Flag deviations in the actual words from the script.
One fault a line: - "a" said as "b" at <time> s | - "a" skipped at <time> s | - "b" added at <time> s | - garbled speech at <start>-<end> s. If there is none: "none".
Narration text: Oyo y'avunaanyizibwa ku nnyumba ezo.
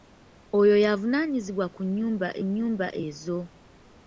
- "nnyumba" added at 2.5 s